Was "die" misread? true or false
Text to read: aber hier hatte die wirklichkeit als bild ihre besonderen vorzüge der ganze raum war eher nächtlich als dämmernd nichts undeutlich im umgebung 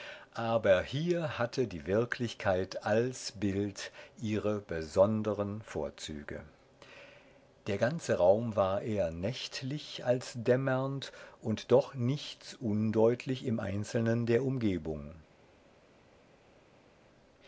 false